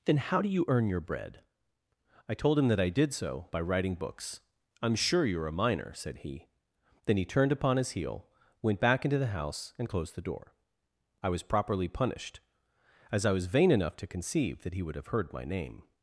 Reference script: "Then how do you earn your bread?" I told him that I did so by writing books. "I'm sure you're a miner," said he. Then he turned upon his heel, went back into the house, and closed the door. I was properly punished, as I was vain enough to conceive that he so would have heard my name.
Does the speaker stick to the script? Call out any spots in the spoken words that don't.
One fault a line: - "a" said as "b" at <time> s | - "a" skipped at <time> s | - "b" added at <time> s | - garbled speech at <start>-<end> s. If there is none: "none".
- "so" skipped at 14.8 s